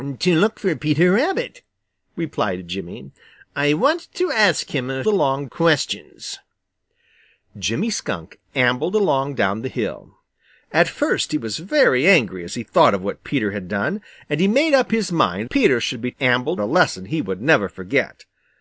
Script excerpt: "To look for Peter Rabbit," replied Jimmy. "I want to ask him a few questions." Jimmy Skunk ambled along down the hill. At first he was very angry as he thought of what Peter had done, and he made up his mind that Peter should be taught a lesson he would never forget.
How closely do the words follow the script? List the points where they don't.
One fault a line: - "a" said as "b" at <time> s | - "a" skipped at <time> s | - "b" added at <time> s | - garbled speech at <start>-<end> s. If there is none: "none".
- "few" said as "along" at 5.1 s
- "that" skipped at 15.5 s
- "taught" said as "ambled" at 16.2 s